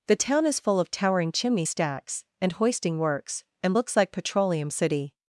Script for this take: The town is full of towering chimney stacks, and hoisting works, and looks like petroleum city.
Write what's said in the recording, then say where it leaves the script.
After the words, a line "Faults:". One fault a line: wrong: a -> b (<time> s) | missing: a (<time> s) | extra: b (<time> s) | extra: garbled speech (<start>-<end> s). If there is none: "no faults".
The town is full of towering chimney stacks, and hoisting works, and looks like petroleum city.
Faults:
no faults